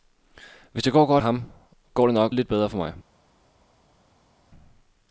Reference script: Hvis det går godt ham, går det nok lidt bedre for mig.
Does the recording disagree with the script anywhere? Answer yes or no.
no